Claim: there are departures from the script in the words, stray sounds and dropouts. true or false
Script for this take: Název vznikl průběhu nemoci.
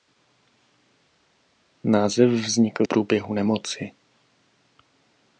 false